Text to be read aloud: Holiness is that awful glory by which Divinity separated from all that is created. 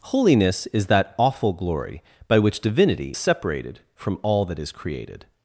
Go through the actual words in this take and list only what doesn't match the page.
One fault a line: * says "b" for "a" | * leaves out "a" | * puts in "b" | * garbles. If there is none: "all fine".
all fine